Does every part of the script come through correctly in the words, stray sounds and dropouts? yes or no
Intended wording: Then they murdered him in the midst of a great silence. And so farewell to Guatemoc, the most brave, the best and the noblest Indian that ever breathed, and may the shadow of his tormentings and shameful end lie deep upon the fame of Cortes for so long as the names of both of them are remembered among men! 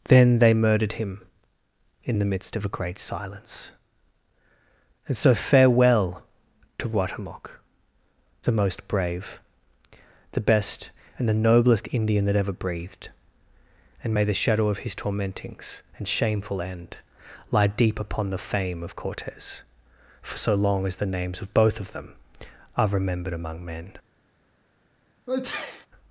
no